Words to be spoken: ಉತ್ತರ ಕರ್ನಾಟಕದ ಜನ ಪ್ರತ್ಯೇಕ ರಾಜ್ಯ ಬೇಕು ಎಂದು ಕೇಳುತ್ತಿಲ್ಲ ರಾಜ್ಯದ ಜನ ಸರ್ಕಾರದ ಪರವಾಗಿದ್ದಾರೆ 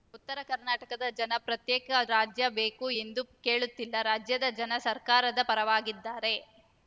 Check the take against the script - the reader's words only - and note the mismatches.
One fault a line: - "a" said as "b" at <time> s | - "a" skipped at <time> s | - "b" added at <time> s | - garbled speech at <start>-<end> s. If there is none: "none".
none